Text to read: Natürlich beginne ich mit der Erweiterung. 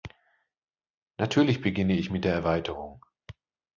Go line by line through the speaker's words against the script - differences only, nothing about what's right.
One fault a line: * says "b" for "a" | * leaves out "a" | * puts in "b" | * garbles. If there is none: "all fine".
all fine